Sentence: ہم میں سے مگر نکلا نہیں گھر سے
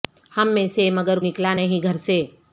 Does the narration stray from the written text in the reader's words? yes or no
no